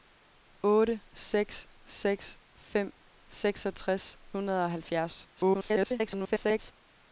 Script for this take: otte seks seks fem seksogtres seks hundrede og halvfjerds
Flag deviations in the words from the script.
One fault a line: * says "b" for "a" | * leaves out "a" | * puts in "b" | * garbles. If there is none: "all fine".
* leaves out "seks"
* garbles